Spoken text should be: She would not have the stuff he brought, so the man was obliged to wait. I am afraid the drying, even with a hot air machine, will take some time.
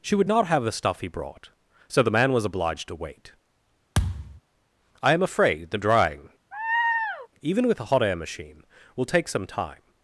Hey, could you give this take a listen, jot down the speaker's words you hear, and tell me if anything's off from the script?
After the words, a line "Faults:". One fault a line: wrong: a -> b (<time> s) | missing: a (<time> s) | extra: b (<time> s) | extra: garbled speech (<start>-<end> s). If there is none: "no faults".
She would not have the stuff he brought, so the man was obliged to wait. I am afraid the drying, even with a hot air machine, will take some time.
Faults:
no faults